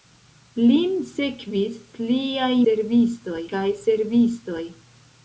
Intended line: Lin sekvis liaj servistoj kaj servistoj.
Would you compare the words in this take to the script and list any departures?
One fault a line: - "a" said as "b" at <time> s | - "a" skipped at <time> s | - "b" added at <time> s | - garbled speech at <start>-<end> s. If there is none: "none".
none